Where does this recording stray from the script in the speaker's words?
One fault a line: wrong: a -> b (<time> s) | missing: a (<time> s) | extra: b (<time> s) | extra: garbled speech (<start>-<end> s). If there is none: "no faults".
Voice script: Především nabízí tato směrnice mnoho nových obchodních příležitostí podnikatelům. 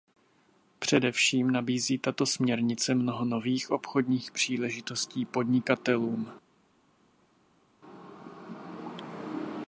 no faults